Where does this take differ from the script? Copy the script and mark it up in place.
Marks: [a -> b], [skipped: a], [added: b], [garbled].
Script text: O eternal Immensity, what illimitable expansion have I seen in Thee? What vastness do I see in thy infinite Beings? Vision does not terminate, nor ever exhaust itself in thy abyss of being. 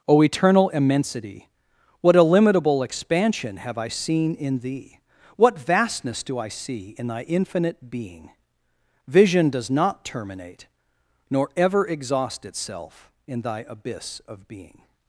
O eternal Immensity, what illimitable expansion have I seen in Thee? What vastness do I see in thy infinite [Beings? -> Being] Vision does not terminate, nor ever exhaust itself in thy abyss of being.